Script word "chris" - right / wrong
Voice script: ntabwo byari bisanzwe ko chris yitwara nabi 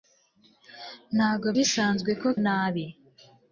wrong